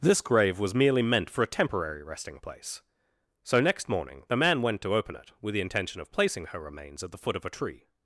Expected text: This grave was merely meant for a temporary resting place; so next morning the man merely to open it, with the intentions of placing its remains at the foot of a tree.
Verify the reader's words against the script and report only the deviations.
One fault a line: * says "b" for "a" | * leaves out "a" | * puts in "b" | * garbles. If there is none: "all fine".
* says "went" for "merely"
* says "intention" for "intentions"
* says "her" for "its"